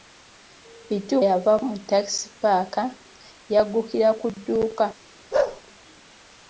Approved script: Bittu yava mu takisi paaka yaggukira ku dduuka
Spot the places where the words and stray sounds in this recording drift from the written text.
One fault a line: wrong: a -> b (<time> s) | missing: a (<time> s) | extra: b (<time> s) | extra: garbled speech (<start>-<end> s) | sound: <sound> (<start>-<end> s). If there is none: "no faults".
sound: bark (5.3-5.6 s)